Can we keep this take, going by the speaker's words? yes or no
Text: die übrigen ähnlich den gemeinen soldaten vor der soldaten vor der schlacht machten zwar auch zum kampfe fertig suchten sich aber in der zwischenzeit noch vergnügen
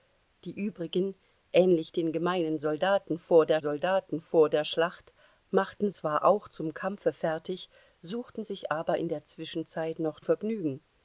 yes